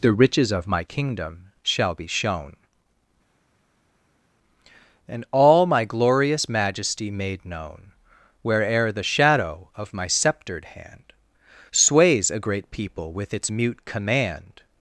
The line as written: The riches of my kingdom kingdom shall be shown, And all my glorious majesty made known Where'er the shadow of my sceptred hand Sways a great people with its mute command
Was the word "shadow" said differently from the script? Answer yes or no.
no